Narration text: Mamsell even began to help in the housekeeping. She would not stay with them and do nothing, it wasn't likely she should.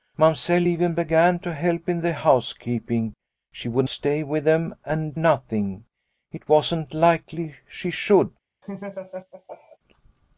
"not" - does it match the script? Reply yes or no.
no